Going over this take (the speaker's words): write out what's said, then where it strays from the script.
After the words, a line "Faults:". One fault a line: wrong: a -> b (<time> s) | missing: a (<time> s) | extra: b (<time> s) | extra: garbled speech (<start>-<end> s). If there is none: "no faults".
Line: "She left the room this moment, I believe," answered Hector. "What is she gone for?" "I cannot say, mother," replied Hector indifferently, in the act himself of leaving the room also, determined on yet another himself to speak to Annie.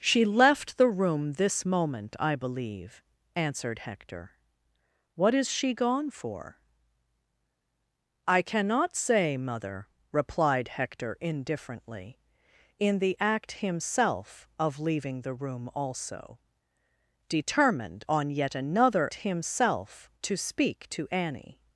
"She left the room this moment, I believe," answered Hector. "What is she gone for?" "I cannot say, mother," replied Hector indifferently, in the act himself of leaving the room also, determined on yet another himself to speak to Annie.
Faults:
no faults